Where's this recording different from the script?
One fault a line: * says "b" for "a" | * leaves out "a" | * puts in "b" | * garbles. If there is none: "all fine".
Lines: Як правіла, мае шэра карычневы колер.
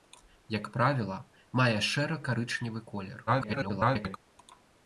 * garbles